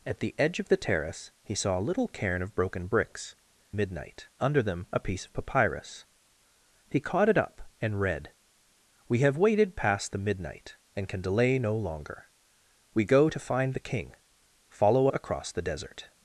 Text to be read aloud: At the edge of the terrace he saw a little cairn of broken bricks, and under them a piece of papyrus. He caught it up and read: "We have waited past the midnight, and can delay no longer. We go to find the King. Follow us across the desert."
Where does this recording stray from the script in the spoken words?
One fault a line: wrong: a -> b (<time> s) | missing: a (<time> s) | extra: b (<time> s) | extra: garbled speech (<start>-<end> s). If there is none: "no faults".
wrong: and -> midnight (3.7 s)
missing: us (15.1 s)